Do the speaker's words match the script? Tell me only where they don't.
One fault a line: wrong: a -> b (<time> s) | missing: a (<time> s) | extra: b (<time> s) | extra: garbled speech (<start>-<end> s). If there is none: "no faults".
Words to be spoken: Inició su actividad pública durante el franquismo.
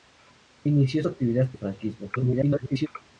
missing: pública durante (1.5 s)
extra: garbled speech (2.2-2.9 s)